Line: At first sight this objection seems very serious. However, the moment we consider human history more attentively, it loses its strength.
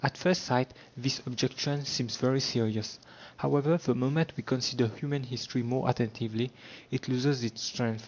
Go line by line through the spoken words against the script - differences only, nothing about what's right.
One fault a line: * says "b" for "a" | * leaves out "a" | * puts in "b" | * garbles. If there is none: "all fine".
all fine